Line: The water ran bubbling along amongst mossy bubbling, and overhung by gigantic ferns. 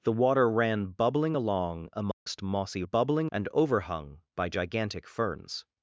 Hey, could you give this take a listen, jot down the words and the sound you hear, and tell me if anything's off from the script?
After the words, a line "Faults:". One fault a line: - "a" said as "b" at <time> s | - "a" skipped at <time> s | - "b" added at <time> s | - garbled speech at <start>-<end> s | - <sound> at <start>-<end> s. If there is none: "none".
The water ran bubbling along amongst mossy bubbling, and overhung by gigantic ferns.
Faults:
- dropout at 2.1-2.3 s